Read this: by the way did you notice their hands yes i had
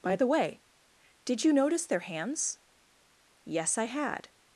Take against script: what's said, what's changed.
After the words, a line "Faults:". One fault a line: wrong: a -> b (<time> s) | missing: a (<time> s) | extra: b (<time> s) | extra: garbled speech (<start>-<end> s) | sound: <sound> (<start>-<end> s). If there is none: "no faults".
by the way did you notice their hands yes i had
Faults:
no faults